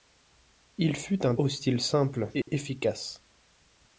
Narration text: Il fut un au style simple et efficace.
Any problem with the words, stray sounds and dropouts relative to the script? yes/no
yes